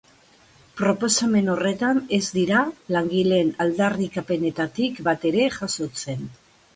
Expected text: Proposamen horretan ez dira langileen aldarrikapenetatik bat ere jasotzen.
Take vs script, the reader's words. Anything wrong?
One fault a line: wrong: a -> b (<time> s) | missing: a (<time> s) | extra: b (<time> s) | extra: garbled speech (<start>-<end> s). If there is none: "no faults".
no faults